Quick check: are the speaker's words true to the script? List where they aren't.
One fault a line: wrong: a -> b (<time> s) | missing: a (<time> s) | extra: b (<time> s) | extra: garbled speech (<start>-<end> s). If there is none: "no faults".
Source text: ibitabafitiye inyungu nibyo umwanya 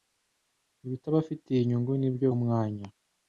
no faults